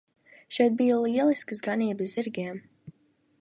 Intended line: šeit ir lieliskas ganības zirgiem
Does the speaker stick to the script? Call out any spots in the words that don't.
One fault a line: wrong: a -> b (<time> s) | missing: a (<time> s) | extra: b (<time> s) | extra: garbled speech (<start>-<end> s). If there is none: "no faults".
wrong: ir -> bija (0.8 s)